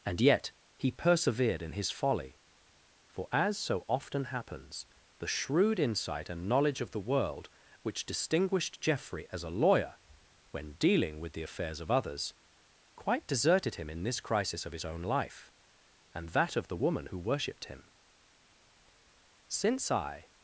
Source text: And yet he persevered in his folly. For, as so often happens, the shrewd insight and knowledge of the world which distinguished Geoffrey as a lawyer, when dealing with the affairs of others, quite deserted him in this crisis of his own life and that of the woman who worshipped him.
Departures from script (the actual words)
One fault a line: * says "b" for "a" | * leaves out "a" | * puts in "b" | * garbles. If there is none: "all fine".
* puts in "Since I"